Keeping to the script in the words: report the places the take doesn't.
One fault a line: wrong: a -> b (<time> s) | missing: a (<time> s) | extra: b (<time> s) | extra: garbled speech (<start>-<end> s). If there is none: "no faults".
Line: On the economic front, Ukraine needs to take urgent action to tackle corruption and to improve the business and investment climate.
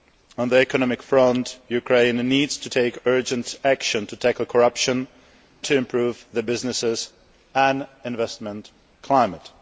missing: and (5.1 s)